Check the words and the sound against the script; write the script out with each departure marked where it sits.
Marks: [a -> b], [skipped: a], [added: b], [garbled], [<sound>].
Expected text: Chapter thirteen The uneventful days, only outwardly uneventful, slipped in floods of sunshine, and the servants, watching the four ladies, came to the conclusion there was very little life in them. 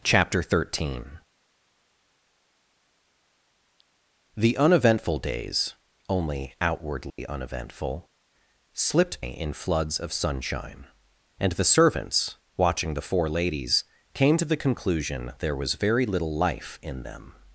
Chapter thirteen The uneventful days, only outwardly [dropout] uneventful, slipped in floods of sunshine, and the servants, watching the four ladies, came to the conclusion there was very little life in them.